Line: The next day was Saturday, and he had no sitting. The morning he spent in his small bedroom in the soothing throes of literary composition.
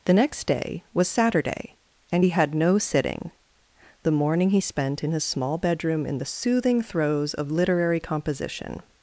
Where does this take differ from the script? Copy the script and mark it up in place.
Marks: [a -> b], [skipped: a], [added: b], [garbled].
The next day was Saturday, and he had no sitting. The morning he spent in his small bedroom in the soothing throes of literary composition.